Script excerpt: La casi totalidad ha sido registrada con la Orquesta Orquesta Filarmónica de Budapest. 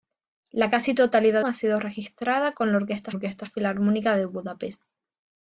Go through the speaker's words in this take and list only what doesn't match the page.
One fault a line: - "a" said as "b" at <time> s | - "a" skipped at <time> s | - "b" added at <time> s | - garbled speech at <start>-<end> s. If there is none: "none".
none